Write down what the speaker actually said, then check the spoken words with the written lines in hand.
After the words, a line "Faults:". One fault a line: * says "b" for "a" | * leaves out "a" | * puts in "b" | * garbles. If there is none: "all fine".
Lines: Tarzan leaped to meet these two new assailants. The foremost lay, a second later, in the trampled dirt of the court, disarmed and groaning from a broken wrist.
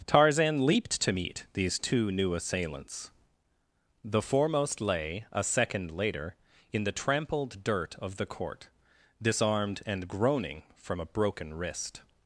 Tarzan leaped to meet these two new assailants. The foremost lay, a second later, in the trampled dirt of the court, disarmed and groaning from a broken wrist.
Faults:
all fine